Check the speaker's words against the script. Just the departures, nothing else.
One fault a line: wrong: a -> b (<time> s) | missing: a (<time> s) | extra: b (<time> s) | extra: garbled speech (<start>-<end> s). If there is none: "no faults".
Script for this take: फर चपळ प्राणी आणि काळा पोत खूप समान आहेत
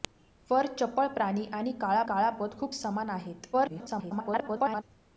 extra: काळा (2.1 s)
extra: garbled speech (3.5-4.8 s)